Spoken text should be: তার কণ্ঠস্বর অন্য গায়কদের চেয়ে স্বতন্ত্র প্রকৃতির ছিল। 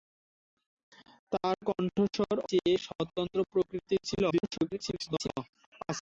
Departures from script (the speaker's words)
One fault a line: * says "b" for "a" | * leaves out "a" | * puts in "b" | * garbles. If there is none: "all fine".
* leaves out "অন্য গায়কদের"
* garbles